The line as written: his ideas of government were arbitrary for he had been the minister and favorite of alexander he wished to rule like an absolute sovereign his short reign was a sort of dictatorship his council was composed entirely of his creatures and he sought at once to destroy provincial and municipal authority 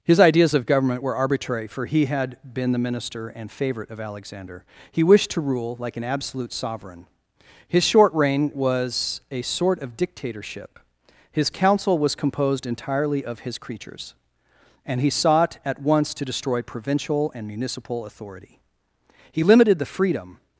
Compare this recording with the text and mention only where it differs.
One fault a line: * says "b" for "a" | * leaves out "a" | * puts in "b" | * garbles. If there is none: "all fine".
* puts in "he limited the freedom"